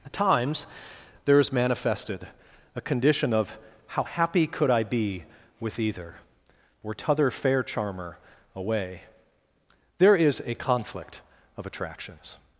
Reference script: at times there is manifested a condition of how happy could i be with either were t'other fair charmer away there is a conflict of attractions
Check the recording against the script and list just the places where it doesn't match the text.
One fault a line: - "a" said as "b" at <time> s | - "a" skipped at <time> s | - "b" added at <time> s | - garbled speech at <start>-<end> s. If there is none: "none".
- "were" said as "or" at 6.8 s